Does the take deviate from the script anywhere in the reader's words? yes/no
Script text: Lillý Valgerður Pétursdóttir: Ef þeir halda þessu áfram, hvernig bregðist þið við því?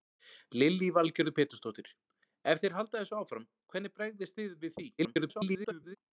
yes